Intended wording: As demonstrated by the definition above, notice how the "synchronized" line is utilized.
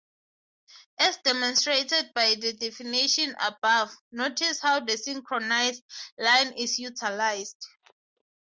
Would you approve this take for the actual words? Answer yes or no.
yes